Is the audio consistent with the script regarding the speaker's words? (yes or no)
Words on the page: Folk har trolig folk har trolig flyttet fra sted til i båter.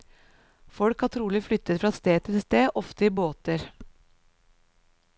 no